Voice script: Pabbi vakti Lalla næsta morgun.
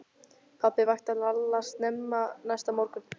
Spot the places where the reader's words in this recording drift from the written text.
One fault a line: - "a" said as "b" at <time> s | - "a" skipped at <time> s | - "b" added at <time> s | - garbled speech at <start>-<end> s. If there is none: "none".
- "snemma" added at 1.6 s